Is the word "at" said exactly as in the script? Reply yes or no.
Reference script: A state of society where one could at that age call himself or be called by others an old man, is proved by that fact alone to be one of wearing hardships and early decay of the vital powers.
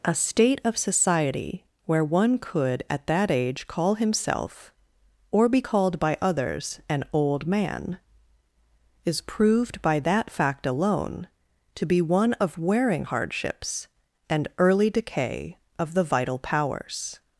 yes